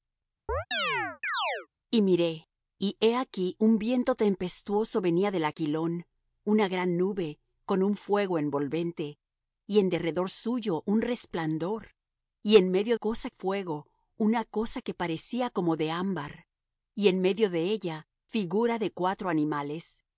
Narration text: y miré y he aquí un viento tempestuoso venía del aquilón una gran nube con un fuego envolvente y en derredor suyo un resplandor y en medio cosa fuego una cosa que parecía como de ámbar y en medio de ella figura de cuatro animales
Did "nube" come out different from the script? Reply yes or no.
no